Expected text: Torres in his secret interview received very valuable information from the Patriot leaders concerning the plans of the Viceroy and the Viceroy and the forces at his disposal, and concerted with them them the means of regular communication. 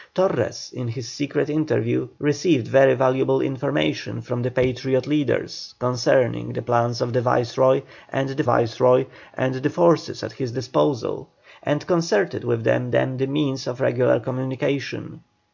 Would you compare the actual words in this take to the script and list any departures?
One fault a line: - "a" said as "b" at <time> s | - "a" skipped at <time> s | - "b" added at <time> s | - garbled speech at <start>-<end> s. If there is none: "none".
none